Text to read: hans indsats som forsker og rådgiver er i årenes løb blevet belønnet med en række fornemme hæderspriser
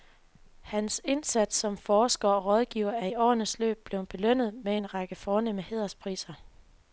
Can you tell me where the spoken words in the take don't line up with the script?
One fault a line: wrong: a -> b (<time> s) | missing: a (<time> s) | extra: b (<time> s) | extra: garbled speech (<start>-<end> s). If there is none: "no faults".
no faults